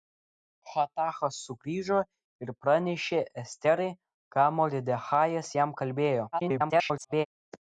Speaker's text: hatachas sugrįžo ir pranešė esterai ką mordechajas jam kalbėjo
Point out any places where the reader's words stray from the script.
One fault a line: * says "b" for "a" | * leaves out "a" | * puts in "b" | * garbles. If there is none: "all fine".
* garbles